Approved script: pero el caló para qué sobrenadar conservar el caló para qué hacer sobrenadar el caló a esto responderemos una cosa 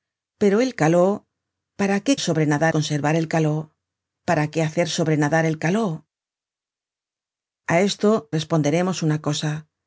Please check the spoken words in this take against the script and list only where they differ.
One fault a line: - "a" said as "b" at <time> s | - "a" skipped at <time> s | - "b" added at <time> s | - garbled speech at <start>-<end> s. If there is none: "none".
none